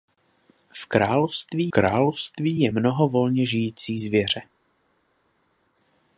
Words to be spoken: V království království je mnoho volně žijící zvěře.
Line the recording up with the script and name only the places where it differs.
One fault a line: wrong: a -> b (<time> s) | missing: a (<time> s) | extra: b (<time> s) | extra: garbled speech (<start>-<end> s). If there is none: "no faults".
no faults